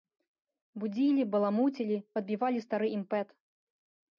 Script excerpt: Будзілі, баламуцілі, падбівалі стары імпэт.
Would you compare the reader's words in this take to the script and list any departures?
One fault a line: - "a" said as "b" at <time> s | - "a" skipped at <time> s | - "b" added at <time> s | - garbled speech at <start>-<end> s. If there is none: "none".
none